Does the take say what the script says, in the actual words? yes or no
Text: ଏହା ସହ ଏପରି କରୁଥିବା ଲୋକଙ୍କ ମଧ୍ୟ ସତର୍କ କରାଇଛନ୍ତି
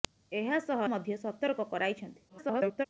no